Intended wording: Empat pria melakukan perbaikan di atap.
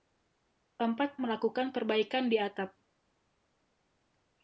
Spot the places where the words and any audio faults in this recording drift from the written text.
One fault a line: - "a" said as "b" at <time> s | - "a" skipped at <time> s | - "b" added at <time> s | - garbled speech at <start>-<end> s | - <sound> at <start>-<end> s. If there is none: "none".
- "pria" skipped at 1.2 s